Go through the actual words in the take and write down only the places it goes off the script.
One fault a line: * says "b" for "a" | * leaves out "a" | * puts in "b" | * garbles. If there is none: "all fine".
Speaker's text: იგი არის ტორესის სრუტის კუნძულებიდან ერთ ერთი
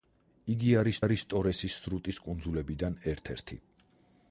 * puts in "არის"